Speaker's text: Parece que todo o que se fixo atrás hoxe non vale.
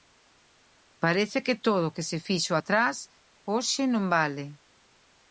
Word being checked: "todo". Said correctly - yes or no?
yes